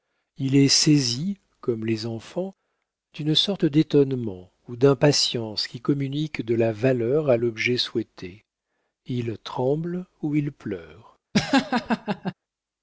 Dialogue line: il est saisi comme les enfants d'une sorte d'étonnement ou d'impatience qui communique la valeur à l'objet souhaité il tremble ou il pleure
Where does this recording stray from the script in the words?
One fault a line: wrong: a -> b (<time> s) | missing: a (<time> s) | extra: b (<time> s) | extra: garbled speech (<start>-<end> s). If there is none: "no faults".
extra: de (6.4 s)